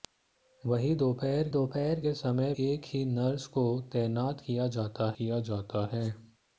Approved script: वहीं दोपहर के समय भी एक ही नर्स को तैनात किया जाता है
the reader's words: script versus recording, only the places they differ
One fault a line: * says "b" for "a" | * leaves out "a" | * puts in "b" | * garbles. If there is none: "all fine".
* puts in "दोपहर"
* leaves out "भी"
* puts in "किया जाता"